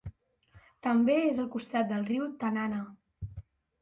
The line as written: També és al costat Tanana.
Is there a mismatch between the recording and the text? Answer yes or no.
yes